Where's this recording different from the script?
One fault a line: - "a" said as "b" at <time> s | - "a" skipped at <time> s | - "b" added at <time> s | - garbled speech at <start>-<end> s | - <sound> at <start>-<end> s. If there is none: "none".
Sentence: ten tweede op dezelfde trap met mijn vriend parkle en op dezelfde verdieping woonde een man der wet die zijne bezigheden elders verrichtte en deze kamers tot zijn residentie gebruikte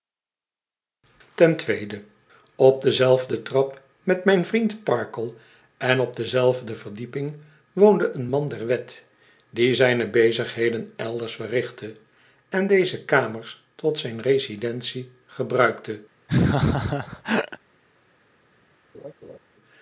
- laugh at 16.3-17.6 s
- laugh at 18.9-19.4 s